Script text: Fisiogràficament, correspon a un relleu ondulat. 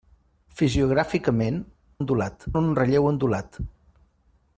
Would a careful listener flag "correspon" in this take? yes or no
yes